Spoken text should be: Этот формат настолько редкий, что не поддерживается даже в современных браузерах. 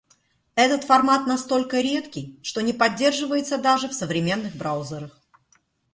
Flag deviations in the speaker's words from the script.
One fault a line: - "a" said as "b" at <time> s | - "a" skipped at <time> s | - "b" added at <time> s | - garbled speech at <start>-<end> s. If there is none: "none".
none